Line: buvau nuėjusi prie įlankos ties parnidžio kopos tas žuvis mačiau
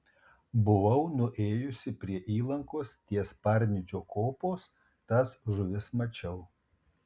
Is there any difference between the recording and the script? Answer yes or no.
no